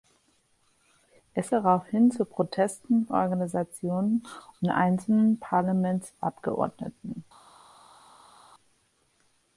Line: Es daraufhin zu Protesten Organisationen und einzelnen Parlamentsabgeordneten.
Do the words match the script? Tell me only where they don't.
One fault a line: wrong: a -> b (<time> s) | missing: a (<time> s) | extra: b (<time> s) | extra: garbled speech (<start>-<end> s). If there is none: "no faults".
no faults